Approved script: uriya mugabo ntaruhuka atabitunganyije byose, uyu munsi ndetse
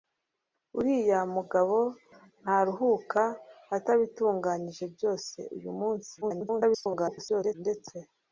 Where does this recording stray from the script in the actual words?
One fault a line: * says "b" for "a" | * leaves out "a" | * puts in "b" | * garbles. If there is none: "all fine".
* garbles